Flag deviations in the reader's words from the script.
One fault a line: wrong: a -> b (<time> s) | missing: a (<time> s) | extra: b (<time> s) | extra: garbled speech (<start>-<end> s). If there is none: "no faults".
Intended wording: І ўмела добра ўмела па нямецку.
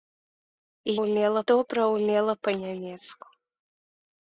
no faults